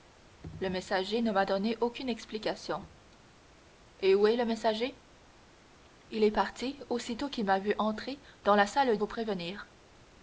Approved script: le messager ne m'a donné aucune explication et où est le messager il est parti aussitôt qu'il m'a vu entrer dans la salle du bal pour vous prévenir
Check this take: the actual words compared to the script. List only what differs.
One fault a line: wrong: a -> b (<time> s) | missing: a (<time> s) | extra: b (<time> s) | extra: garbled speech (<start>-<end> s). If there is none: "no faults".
missing: du bal pour (9.0 s)